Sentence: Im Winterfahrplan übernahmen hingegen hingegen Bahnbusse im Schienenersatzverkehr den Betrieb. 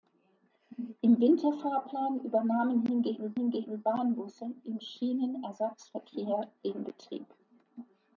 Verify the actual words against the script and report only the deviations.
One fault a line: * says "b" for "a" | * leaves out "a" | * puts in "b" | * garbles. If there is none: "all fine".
all fine